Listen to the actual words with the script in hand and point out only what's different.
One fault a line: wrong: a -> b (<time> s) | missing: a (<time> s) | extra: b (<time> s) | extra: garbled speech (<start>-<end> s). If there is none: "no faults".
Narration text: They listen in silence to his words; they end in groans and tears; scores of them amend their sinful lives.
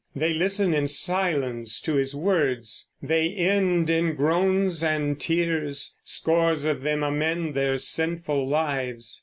no faults